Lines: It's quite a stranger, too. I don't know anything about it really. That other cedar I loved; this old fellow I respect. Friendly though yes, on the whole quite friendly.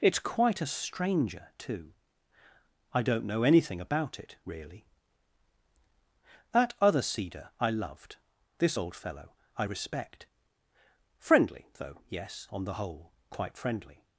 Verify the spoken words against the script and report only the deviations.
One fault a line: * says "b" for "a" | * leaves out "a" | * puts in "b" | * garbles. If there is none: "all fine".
all fine